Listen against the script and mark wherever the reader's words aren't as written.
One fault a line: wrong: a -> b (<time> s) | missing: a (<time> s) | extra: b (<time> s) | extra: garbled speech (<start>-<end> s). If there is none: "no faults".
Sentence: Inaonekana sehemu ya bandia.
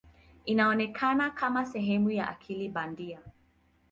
extra: kama (1.3 s)
extra: akili (2.3 s)